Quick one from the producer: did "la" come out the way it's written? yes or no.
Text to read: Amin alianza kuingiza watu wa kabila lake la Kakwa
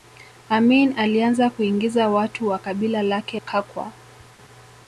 no